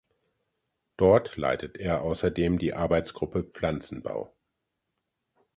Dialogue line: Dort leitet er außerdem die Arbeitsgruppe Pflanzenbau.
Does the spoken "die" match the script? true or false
true